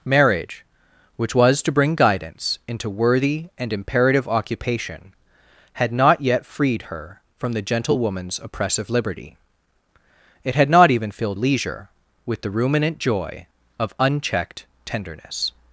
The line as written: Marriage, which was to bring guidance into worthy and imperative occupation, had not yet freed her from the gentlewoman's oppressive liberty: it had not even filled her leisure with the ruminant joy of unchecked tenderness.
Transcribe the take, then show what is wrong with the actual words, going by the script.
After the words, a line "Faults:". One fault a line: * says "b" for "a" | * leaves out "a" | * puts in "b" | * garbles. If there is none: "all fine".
Marriage, which was to bring guidance into worthy and imperative occupation, had not yet freed her from the gentlewoman's oppressive liberty: it had not even filled leisure with the ruminant joy of unchecked tenderness.
Faults:
* leaves out "her"